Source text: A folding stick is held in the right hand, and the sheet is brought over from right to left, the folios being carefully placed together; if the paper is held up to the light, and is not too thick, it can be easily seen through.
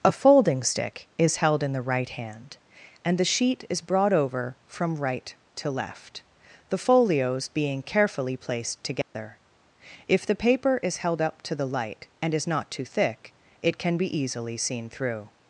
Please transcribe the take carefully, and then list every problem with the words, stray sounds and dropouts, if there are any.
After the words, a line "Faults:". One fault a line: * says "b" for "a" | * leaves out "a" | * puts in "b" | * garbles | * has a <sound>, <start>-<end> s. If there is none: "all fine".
A folding stick is held in the right hand, and the sheet is brought over from right to left, the folios being carefully placed together; if the paper is held up to the light, and is not too thick, it can be easily seen through.
Faults:
* has a dropout, 9.0-9.1 s